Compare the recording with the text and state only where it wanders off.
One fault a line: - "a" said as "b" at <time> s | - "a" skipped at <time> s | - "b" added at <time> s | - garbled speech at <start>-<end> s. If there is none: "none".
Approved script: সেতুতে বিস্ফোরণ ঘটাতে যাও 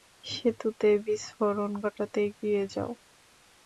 - "এগিয়ে" added at 2.3 s